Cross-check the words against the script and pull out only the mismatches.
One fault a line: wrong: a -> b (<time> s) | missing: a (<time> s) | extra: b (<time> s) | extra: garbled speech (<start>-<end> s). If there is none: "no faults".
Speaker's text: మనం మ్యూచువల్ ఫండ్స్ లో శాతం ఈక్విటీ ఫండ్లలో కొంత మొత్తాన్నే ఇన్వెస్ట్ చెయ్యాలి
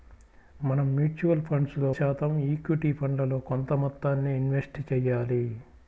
no faults